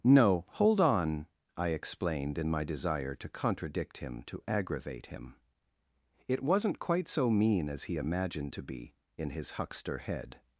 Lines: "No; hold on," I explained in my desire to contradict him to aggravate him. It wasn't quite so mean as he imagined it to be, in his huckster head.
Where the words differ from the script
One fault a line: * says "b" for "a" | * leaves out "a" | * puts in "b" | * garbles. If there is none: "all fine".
* leaves out "it"